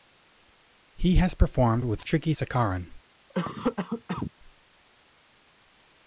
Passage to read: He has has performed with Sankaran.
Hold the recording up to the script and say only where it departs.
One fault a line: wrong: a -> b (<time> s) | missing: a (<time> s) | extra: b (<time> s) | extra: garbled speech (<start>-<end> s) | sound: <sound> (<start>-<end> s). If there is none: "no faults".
missing: has (1.3 s)
extra: Trichy (2.0 s)
sound: cough (3.3-4.3 s)